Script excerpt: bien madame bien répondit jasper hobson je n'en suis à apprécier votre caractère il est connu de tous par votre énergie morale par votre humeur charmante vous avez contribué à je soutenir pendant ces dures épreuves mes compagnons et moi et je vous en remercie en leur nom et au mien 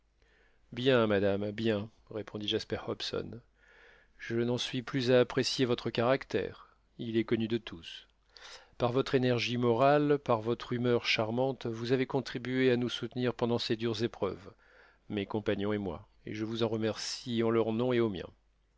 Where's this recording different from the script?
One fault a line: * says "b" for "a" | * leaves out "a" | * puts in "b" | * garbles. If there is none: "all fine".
* puts in "plus"
* says "nous" for "je"